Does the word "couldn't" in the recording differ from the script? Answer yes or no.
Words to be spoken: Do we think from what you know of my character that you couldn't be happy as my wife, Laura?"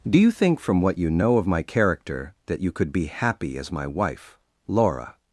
yes